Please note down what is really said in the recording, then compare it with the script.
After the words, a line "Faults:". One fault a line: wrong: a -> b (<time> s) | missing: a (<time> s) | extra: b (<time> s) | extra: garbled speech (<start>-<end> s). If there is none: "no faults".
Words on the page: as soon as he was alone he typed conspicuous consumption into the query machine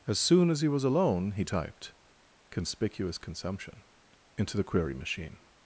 as soon as he was alone he typed conspicuous consumption into the query machine
Faults:
no faults